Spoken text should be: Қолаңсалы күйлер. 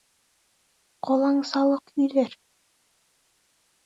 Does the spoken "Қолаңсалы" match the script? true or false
true